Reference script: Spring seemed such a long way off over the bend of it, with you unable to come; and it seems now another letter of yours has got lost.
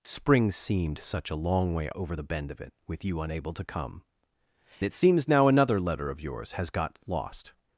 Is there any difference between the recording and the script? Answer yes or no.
yes